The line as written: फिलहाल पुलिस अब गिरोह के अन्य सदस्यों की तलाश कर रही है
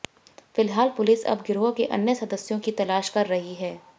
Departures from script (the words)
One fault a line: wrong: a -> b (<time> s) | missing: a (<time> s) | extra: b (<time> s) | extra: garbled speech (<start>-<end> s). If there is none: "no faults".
no faults